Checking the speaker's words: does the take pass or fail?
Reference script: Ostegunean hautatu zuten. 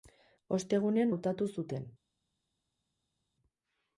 pass